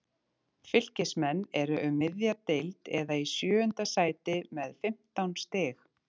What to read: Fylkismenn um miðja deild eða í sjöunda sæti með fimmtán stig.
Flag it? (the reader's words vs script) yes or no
yes